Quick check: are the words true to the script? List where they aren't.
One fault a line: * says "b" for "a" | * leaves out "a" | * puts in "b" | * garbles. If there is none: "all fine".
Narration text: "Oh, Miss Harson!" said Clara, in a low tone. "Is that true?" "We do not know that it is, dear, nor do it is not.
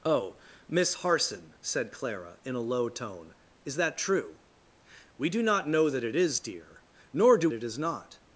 all fine